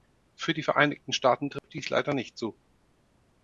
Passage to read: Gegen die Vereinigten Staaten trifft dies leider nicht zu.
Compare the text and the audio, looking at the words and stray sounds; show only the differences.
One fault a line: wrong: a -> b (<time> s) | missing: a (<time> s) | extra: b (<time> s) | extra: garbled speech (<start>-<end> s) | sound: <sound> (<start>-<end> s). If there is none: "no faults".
wrong: Gegen -> Für (0.3 s)
sound: dropout (1.6-1.6 s)